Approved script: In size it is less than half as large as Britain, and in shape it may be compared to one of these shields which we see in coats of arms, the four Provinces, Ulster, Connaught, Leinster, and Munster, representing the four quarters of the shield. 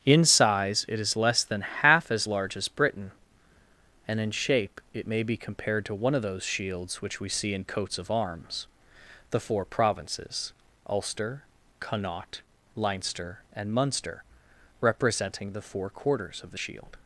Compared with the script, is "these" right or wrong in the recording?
wrong